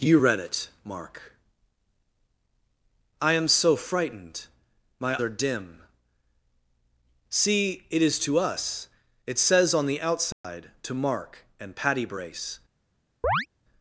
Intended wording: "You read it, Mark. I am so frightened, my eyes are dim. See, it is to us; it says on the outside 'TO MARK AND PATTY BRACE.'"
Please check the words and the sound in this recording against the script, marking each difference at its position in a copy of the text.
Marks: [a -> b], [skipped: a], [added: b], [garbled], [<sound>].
"You read it, Mark. I am so frightened, my [skipped: eyes] are dim. See, it is to us; it says on the outside [dropout] 'TO MARK AND PATTY BRACE.'" [chirp]